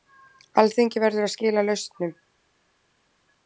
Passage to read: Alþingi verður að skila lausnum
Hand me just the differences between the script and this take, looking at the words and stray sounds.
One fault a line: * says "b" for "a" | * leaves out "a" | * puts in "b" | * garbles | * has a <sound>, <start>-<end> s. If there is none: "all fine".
all fine